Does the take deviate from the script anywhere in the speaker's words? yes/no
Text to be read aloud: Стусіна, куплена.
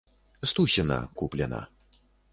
no